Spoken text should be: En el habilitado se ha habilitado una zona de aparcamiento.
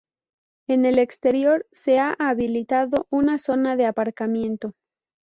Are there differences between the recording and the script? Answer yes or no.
yes